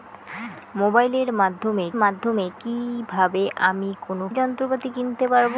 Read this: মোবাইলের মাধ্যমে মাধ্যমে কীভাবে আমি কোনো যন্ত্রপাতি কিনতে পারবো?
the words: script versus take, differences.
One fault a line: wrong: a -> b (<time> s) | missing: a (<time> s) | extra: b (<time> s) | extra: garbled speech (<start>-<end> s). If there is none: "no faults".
no faults